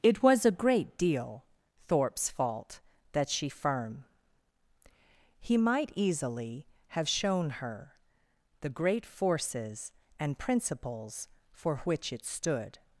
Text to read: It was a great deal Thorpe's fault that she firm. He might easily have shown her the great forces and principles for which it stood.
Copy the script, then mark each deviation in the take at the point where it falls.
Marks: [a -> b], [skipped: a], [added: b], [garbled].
It was a great deal Thorpe's fault that she firm. He might easily have shown her the great forces and principles for which it stood.